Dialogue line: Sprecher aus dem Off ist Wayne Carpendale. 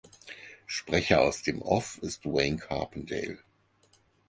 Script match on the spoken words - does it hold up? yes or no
yes